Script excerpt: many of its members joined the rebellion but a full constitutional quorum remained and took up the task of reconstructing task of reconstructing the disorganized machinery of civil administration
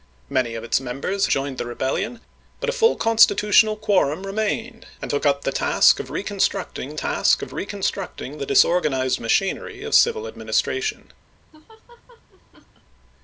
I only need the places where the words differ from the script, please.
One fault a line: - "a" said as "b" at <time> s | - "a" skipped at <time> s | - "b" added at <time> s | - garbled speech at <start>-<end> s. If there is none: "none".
none